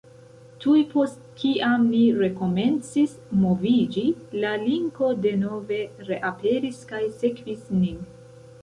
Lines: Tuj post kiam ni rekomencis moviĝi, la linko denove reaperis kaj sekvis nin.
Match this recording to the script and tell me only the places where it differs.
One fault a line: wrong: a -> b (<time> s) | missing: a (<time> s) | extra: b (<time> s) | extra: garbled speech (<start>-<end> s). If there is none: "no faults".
no faults